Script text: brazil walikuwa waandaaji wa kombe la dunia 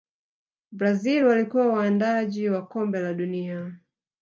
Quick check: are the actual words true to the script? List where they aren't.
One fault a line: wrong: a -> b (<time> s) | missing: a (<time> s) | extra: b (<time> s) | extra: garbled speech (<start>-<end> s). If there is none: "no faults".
no faults